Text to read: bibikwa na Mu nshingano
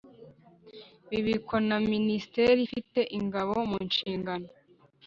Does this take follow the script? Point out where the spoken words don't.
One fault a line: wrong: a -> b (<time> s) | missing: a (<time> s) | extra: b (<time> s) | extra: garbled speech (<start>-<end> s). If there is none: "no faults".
extra: Minisiteri ifite Ingabo (1.9 s)